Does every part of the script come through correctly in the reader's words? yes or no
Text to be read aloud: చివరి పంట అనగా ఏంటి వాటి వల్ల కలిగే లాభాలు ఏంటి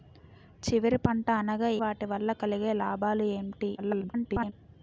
no